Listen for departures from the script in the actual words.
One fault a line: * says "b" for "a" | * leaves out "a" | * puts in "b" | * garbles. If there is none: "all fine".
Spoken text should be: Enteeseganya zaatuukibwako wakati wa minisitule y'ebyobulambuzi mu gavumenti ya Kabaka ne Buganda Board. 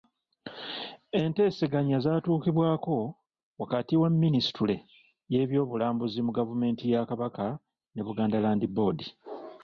* puts in "Land"